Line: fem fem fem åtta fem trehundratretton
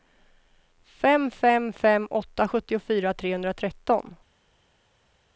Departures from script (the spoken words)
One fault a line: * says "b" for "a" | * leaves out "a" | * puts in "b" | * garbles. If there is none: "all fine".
* says "sjuttiofyra" for "fem"